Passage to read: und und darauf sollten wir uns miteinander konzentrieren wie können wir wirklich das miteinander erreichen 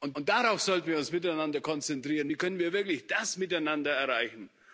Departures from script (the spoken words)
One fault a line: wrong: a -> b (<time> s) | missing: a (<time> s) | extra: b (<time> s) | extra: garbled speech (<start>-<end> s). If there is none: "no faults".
no faults